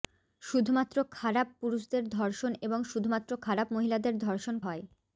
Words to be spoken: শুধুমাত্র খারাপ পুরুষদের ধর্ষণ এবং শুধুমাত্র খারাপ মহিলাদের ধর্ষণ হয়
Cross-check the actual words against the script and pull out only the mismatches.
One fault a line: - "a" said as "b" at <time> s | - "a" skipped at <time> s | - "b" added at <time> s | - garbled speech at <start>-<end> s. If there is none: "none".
none